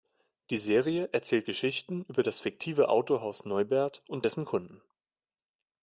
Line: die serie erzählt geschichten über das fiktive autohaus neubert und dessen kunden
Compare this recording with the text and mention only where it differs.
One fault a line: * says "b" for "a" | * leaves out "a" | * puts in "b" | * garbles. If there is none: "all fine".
all fine